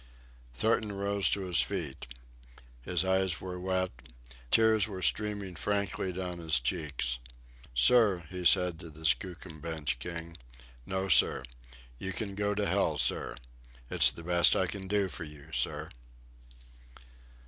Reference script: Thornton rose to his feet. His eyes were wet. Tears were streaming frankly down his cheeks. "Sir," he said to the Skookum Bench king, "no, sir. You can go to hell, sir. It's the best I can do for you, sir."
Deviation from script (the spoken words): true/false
false